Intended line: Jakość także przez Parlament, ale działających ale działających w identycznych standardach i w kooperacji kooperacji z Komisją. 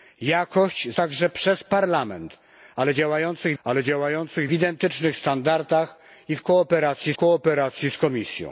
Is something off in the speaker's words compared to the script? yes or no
no